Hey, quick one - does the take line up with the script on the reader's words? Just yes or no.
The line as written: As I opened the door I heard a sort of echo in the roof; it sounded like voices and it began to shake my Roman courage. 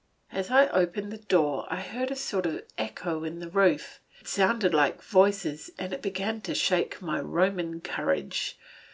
yes